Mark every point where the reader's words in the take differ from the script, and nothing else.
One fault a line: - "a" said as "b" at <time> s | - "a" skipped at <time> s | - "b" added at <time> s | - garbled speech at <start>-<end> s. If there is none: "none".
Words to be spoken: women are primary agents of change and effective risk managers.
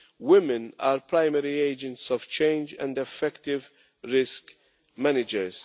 none